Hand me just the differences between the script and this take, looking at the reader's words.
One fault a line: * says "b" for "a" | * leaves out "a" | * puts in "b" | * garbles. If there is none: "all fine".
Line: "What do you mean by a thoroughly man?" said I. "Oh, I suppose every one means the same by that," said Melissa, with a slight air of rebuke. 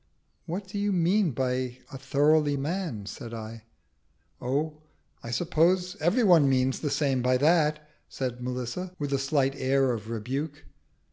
all fine